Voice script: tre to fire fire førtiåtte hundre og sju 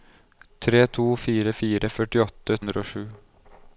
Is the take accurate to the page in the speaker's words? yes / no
yes